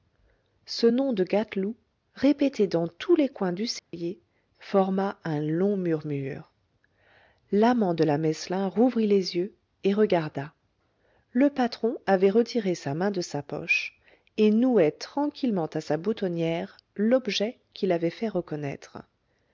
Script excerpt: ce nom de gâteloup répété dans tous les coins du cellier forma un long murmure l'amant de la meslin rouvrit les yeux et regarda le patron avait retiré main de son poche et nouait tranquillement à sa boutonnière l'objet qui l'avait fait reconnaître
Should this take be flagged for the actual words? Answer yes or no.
yes